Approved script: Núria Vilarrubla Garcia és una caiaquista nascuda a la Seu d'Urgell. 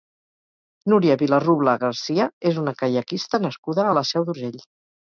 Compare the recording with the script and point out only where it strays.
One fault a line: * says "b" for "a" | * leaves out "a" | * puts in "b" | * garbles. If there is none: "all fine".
all fine